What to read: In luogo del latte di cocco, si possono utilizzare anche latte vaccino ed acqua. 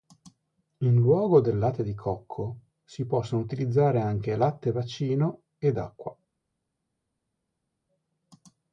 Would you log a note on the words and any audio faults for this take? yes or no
no